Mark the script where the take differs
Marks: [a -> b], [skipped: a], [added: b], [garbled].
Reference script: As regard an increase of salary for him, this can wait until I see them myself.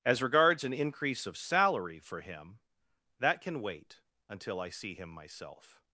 As [regard -> regards] an increase of salary for him, [this -> that] can wait until I see [them -> him] myself.